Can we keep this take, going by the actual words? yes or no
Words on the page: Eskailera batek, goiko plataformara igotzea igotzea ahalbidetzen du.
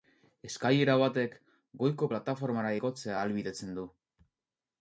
no